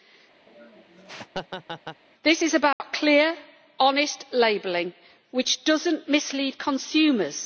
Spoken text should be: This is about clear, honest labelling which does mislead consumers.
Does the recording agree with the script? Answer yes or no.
no